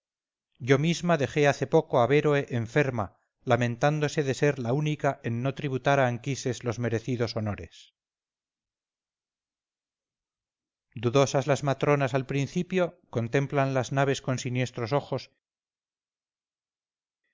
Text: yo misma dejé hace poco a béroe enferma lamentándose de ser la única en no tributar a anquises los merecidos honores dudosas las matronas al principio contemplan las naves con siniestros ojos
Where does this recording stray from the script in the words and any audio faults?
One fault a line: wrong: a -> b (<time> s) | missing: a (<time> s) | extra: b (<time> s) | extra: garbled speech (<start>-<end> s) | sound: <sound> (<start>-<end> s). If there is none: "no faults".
no faults